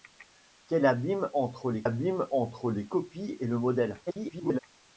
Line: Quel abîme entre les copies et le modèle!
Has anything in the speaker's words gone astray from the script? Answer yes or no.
yes